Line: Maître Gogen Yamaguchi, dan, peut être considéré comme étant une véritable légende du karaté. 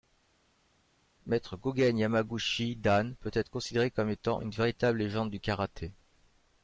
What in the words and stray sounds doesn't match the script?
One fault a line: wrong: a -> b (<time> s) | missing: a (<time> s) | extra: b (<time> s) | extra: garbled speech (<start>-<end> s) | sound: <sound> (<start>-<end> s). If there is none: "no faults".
no faults